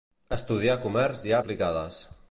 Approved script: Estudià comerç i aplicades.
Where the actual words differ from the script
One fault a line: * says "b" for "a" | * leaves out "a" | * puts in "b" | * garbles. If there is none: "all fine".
all fine